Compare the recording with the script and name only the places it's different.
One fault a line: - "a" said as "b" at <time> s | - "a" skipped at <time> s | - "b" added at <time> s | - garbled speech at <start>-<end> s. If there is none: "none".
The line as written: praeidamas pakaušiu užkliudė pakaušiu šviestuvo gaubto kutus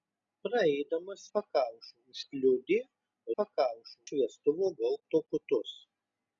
none